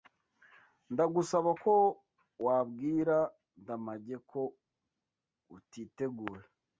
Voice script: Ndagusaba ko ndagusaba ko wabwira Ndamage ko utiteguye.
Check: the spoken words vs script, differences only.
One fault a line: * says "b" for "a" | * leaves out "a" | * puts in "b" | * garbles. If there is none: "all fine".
* leaves out "ndagusaba ko"